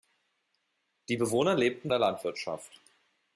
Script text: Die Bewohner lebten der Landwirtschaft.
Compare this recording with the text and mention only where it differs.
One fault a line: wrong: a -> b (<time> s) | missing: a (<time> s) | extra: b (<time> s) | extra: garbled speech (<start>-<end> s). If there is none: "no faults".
no faults